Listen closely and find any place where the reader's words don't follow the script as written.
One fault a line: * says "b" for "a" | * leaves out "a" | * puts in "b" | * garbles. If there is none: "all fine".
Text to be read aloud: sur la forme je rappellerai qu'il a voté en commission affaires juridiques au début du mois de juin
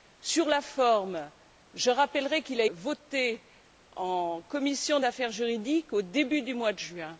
all fine